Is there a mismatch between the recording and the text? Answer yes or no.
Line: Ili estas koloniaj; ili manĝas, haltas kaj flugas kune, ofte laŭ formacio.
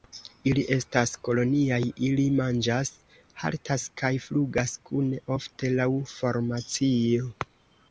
no